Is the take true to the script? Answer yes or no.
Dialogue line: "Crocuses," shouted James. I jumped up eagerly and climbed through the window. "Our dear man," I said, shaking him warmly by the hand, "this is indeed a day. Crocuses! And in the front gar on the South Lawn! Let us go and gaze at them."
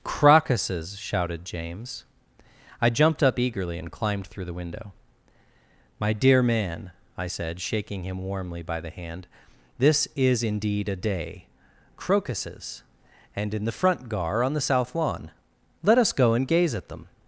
no